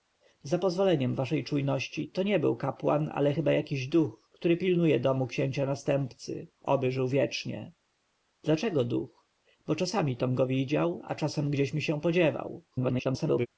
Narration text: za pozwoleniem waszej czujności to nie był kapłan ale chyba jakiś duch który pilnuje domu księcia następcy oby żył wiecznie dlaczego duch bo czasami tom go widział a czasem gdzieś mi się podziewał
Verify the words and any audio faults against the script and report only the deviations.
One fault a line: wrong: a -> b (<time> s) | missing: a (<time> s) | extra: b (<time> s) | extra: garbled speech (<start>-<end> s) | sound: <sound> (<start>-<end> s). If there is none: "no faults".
extra: garbled speech (12.7-13.5 s)